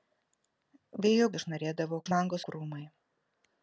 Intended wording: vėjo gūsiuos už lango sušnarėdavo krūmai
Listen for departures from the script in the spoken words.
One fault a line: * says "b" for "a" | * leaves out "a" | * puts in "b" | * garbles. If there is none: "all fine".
* says "sušnarėdavo" for "gūsiuos"
* leaves out "sušnarėdavo"